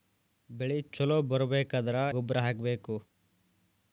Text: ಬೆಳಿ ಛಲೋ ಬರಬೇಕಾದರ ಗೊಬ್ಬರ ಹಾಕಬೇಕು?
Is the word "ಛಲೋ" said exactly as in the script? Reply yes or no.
yes